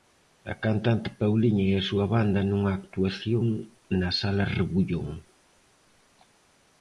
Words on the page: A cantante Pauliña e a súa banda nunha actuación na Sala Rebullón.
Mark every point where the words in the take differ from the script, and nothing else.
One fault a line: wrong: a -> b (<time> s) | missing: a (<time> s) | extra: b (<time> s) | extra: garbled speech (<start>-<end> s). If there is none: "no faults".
no faults